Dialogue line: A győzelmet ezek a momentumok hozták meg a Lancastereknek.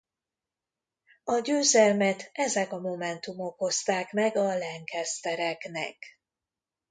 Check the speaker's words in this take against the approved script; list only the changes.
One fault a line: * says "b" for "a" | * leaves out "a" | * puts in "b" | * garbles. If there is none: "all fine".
all fine